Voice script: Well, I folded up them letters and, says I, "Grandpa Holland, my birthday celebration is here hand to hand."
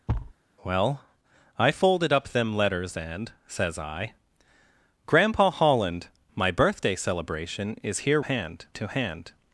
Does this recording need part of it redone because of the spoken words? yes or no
no